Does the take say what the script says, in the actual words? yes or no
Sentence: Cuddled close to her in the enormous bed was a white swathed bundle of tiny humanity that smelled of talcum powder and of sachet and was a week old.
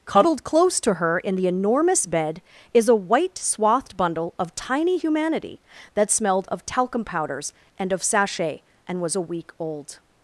no